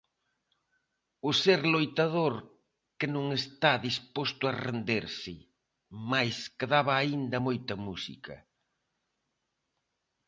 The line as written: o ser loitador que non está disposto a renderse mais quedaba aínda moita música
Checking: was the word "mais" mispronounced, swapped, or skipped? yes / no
no